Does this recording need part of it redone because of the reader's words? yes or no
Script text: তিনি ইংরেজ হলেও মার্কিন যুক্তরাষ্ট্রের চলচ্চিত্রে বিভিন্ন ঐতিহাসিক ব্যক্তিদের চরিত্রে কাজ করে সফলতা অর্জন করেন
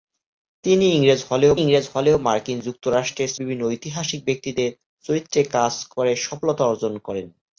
yes